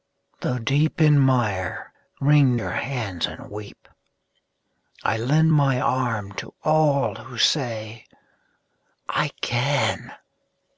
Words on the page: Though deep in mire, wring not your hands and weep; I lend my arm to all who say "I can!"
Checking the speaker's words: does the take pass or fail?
fail